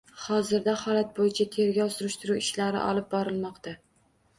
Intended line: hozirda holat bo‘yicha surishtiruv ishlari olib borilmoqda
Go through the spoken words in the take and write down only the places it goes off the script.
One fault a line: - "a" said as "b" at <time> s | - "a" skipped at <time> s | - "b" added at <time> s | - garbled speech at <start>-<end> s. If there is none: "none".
- "tergov" added at 1.6 s